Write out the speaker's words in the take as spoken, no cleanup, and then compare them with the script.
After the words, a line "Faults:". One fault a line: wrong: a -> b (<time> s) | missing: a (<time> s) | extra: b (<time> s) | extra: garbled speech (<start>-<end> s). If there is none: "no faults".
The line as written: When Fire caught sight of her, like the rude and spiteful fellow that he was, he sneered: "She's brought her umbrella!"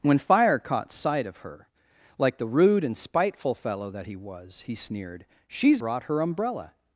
When Fire caught sight of her, like the rude and spiteful fellow that he was, he sneered: "She's brought her umbrella!"
Faults:
no faults